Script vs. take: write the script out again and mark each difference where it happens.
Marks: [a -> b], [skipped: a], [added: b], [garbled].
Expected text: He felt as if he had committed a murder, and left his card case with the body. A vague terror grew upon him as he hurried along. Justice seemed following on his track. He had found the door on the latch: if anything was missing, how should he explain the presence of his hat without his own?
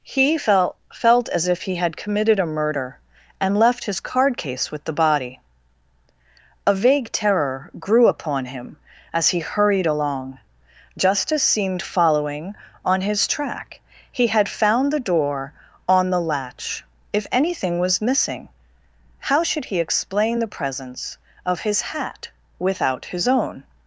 He felt [added: felt] as if he had committed a murder, and left his card case with the body. A vague terror grew upon him as he hurried along. Justice seemed following on his track. He had found the door on the latch: if anything was missing, how should he explain the presence of his hat without his own?